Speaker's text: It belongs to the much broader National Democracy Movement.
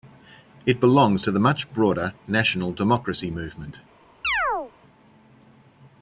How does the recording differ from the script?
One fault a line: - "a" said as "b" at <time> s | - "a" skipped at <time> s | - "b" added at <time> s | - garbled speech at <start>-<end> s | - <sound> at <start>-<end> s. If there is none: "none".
- chirp at 4.2-4.7 s